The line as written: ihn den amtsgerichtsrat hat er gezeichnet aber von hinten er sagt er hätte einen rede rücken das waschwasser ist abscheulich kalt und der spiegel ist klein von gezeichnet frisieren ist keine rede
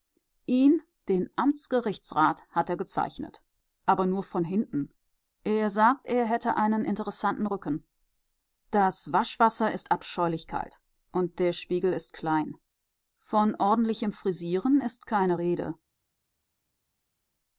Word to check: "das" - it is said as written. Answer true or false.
true